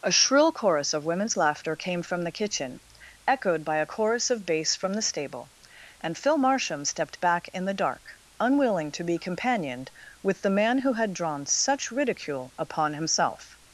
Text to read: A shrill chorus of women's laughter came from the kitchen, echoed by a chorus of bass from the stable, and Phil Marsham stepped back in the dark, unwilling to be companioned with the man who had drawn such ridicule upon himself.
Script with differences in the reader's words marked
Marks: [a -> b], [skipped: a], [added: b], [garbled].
A shrill chorus of women's laughter came from the kitchen, echoed by a chorus of bass from the stable, and Phil Marsham stepped back in the dark, unwilling to be companioned with the man who had drawn such ridicule upon himself.